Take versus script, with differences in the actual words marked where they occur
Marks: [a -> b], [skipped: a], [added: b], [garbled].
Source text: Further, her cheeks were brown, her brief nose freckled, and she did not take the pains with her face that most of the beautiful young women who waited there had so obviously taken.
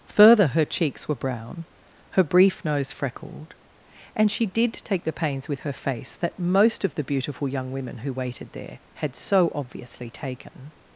Further, her cheeks were brown, her brief nose freckled, and she did [skipped: not] take the pains with her face that most of the beautiful young women who waited there had so obviously taken.